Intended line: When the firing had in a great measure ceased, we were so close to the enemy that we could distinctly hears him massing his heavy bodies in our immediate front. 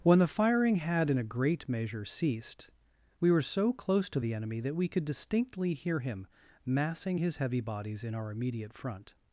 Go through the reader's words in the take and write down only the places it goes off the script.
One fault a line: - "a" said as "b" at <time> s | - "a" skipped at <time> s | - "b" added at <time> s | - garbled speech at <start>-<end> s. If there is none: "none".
- "hears" said as "hear" at 5.7 s